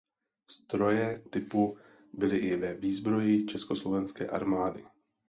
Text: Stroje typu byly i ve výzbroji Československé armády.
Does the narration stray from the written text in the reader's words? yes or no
no